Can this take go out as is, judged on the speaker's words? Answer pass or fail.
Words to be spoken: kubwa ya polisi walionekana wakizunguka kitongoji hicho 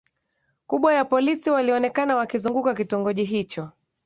pass